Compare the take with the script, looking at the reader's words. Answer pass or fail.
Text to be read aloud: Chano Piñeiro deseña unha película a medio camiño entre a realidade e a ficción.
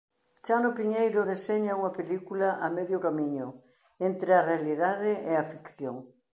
pass